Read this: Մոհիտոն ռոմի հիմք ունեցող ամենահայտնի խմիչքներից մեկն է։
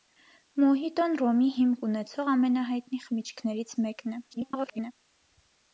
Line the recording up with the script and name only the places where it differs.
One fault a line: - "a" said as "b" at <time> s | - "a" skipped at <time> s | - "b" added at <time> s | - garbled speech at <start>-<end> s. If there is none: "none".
- garbled speech at 4.3-4.9 s